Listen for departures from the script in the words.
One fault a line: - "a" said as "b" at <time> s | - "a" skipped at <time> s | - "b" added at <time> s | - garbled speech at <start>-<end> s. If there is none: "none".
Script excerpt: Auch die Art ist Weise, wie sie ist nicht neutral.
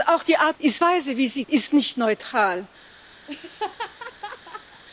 none